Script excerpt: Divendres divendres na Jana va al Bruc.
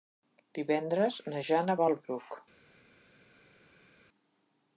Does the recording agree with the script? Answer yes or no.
no